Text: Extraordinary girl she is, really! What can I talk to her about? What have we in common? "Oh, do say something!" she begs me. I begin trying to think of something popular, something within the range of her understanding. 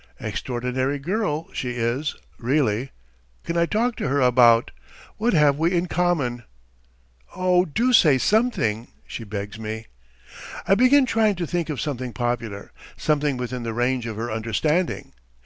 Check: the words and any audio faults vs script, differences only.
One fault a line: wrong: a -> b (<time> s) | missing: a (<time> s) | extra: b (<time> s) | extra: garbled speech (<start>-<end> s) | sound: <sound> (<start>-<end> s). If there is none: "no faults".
missing: What (2.9 s)